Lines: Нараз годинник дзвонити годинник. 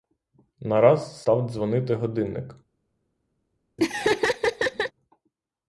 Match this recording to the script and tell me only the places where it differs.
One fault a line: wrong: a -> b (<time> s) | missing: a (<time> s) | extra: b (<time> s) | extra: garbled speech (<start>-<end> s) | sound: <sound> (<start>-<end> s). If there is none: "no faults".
wrong: годинник -> став (1.2 s)
sound: laugh (3.8-4.9 s)